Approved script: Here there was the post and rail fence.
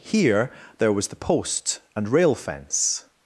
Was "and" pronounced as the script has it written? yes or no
yes